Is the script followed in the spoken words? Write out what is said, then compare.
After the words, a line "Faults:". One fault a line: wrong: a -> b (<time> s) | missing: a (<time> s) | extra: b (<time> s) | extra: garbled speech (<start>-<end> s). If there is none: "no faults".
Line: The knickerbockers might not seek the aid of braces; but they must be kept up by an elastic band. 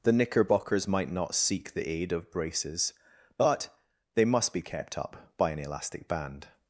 The knickerbockers might not seek the aid of braces; but they must be kept up by an elastic band.
Faults:
no faults